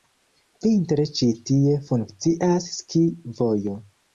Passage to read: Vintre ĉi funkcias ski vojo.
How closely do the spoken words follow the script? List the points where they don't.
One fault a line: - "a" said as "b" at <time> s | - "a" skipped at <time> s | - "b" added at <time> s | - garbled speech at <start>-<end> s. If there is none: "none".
- "tie" added at 1.5 s